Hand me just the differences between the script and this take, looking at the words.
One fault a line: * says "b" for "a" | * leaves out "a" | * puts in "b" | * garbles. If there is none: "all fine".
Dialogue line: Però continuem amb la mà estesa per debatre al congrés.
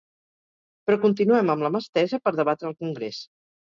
all fine